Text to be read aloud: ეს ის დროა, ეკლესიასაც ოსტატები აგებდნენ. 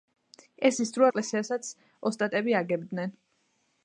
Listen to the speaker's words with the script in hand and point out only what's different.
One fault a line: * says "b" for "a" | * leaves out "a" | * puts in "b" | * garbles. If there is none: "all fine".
all fine